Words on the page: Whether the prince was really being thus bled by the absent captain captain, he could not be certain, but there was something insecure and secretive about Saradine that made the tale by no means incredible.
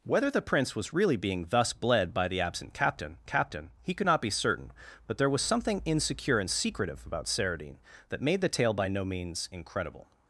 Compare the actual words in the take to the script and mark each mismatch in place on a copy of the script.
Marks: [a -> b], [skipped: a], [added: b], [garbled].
Whether the prince was really being thus bled by the absent captain captain, he could not be certain, but there was something insecure and secretive about Saradine that made the tale by no means incredible.